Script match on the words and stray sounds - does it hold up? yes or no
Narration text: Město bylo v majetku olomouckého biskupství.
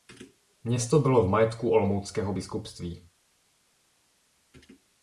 yes